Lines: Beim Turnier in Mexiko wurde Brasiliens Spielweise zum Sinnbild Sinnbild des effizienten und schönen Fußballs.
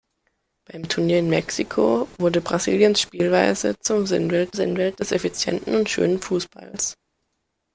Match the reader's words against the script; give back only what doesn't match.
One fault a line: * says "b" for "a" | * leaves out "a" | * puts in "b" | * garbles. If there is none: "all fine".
all fine